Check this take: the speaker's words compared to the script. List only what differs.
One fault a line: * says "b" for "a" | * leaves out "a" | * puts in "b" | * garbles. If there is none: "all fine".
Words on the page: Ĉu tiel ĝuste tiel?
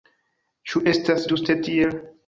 * says "estas" for "tiel"